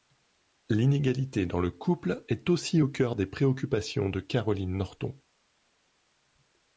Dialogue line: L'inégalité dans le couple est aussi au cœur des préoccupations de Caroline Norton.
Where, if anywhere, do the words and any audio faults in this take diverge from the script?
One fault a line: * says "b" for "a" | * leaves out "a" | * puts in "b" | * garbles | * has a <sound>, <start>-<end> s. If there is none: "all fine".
all fine